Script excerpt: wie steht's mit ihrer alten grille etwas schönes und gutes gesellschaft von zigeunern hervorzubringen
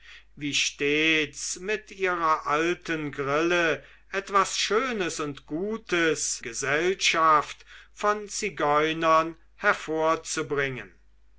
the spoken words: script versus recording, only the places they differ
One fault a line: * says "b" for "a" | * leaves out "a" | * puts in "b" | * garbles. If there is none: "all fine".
all fine